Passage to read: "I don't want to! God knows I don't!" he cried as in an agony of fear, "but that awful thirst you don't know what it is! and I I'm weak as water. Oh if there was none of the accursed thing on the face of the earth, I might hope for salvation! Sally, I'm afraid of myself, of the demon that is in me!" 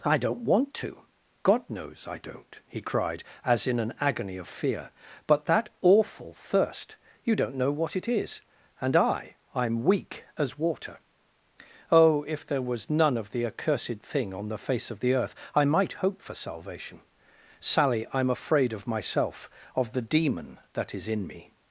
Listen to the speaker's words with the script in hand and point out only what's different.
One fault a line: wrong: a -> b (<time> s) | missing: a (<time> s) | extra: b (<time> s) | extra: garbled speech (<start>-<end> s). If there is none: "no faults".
no faults